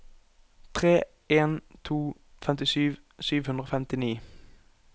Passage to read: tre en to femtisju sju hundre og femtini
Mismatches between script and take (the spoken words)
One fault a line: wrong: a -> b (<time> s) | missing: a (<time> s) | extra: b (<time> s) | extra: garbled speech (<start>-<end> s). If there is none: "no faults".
no faults